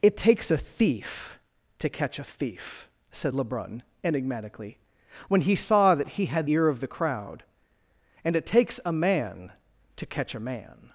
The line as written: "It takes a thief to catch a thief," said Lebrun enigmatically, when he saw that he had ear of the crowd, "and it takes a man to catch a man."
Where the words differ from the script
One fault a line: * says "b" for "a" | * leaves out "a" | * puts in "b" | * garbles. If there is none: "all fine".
all fine